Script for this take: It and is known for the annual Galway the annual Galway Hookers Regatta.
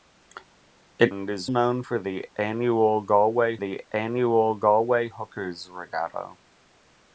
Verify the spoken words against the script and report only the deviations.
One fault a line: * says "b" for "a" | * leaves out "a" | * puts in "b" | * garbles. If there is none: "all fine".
all fine